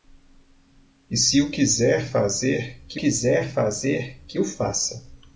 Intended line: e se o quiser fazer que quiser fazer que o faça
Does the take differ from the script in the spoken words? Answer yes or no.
no